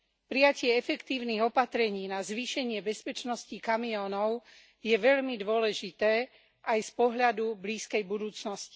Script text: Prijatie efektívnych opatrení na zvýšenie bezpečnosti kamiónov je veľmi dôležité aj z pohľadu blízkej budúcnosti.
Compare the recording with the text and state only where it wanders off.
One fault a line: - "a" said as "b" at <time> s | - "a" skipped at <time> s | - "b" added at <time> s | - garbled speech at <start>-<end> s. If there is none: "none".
none